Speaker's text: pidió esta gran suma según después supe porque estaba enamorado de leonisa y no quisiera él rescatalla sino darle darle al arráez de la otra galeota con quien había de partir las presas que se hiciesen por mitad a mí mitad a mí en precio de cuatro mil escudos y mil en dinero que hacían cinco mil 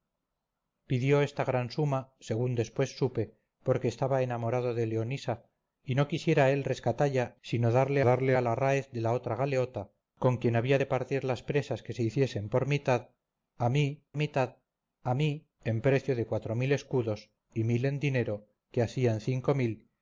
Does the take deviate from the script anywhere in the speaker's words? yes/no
no